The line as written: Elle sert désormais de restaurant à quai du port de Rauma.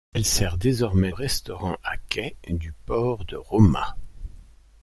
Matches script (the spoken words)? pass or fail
fail